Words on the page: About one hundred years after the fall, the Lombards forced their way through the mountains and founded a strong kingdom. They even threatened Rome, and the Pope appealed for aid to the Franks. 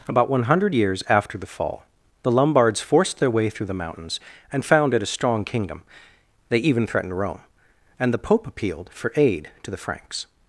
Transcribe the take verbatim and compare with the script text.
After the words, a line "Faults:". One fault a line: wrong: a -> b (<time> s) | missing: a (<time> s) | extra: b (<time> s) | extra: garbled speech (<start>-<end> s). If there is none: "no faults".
About one hundred years after the fall, the Lombards forced their way through the mountains and founded a strong kingdom. They even threatened Rome, and the Pope appealed for aid to the Franks.
Faults:
no faults